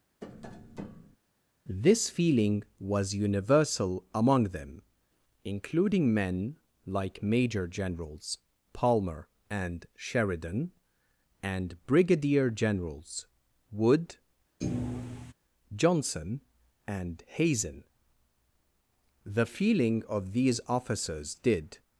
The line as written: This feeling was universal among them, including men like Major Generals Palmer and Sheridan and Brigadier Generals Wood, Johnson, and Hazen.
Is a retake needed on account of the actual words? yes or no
yes